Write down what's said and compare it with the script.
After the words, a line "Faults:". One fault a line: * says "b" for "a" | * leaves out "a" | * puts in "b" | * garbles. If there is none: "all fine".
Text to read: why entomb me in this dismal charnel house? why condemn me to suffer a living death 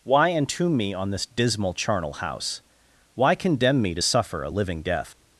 why entomb me on this dismal charnel house? why condemn me to suffer a living death
Faults:
* says "on" for "in"